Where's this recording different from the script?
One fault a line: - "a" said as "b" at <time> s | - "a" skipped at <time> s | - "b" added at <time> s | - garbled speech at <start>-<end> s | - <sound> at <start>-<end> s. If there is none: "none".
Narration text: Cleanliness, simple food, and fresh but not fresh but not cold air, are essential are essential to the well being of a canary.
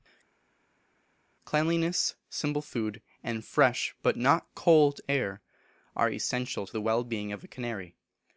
- "fresh but not" skipped at 4.5 s
- "are essential" skipped at 6.7 s